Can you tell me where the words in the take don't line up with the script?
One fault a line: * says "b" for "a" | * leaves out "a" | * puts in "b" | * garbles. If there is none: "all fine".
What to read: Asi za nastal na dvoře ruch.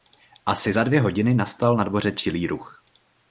* puts in "dvě hodiny"
* puts in "čilý"